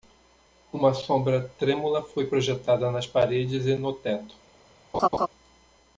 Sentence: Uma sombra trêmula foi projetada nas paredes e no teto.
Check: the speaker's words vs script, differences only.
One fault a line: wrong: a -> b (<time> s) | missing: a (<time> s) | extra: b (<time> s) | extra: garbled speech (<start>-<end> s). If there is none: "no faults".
no faults